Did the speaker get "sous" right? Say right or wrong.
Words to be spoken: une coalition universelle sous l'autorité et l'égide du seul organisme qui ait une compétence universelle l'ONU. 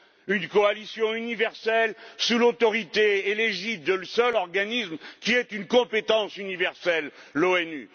right